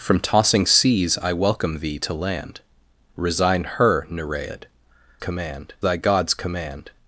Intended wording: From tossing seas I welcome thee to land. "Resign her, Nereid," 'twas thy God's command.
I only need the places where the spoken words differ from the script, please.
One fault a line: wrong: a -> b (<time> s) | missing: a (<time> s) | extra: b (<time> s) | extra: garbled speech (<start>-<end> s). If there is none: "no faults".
wrong: twas -> command (5.2 s)